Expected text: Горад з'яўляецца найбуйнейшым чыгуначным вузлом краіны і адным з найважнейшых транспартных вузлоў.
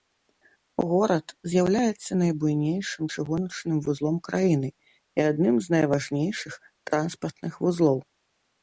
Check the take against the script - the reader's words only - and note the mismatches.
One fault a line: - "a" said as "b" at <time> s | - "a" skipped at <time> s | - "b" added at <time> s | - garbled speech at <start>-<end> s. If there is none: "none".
none